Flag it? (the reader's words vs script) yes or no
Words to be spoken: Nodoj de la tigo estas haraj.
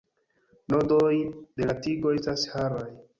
no